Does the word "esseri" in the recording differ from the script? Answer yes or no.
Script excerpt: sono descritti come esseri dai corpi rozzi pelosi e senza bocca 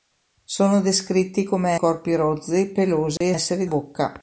yes